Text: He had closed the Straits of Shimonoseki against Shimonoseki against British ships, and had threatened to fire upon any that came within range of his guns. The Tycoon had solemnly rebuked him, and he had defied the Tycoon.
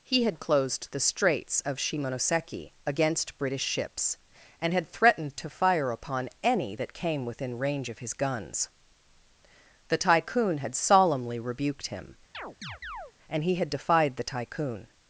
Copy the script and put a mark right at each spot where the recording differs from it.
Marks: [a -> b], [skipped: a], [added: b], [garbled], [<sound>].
He had closed the Straits of Shimonoseki against [skipped: Shimonoseki against] British ships, and had threatened to fire upon any that came within range of his guns. The Tycoon had solemnly rebuked him, [chirp] and he had defied the Tycoon.